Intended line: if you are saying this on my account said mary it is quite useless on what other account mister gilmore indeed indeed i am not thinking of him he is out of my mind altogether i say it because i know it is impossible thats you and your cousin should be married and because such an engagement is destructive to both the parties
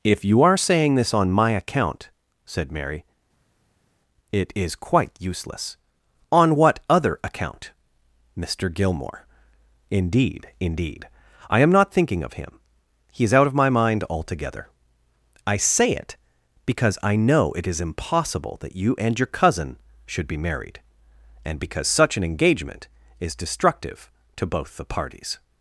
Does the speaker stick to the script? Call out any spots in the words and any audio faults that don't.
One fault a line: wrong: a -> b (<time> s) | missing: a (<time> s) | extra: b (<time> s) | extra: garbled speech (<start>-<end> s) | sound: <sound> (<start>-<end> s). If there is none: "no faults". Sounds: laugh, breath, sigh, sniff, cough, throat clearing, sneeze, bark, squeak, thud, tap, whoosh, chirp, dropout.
wrong: thats -> that (18.6 s)